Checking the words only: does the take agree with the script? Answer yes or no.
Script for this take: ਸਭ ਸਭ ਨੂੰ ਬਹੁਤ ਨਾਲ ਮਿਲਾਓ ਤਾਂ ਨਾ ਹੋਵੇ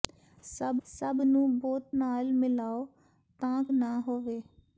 yes